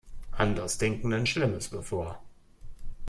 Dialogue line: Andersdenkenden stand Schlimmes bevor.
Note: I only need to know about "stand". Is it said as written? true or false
false